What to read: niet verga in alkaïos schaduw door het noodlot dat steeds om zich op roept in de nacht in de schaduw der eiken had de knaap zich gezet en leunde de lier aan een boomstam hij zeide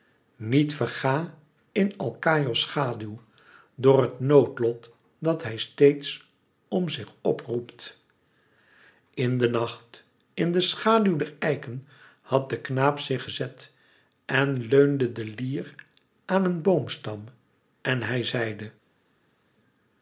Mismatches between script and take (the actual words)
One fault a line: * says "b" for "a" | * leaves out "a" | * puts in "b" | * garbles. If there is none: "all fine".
* puts in "hij"
* puts in "en"